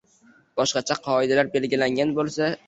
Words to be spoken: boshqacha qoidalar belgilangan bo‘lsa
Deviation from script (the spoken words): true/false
false